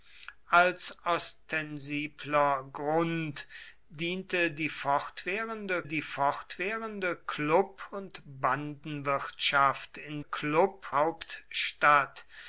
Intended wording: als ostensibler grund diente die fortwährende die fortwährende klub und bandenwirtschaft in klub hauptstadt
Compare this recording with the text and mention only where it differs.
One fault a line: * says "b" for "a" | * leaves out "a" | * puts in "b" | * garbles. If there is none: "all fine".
all fine